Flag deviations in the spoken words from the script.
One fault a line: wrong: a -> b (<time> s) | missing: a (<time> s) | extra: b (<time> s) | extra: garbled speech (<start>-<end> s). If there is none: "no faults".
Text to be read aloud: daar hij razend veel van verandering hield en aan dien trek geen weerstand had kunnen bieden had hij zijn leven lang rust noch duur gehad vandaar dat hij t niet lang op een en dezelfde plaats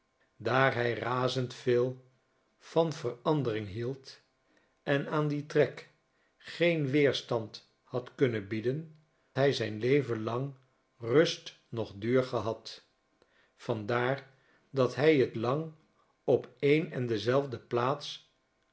missing: had (8.9 s)
missing: niet (15.4 s)